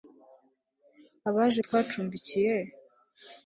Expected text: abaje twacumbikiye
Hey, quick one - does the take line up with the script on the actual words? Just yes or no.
yes